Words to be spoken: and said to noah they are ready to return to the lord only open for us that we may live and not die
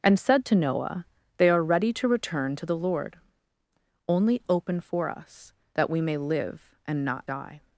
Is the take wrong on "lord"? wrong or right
right